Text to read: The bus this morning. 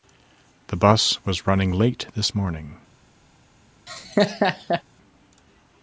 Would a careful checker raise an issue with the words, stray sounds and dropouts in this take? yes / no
yes